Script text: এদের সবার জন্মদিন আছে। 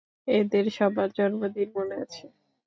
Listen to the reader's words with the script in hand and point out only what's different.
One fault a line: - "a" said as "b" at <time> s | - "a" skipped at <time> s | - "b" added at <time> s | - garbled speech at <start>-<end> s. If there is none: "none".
- "মনে" added at 1.7 s